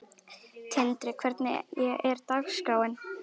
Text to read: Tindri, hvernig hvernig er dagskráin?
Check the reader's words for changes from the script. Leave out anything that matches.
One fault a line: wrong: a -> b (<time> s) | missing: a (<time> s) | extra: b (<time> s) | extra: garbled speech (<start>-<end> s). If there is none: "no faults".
missing: hvernig (1.8 s)